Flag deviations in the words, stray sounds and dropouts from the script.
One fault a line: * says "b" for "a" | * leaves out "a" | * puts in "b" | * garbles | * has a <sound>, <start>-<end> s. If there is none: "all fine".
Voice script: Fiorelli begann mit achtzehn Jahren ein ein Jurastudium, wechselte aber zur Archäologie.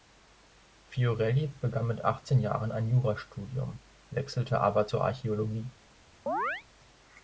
* leaves out "ein"
* has a chirp, 6.3-6.6 s